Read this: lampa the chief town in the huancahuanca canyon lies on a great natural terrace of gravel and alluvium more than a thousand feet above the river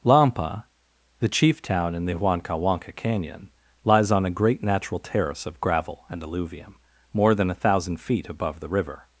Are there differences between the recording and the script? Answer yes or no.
no